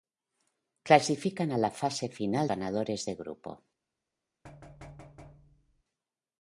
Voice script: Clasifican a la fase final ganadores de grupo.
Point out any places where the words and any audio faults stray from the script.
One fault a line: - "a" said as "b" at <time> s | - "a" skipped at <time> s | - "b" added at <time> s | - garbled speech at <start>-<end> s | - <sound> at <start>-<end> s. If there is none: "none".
- thud at 4.4-5.8 s